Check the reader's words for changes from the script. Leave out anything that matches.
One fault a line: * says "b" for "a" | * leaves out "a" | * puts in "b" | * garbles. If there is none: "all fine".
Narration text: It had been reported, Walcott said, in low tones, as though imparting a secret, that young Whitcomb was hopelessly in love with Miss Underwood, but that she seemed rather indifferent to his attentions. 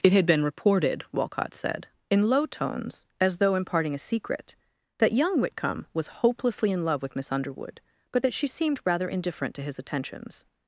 all fine